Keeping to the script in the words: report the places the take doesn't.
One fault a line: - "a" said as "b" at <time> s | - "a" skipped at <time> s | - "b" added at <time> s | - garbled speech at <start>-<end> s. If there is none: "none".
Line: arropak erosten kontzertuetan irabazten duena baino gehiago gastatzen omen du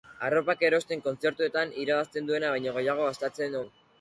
- "omen" skipped at 3.6 s